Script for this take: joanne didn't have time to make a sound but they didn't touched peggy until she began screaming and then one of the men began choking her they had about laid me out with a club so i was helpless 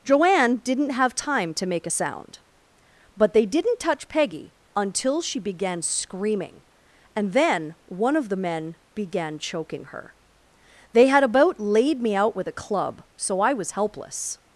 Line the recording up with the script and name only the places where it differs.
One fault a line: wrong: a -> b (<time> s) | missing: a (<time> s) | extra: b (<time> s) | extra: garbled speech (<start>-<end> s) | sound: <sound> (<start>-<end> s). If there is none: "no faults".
wrong: touched -> touch (3.8 s)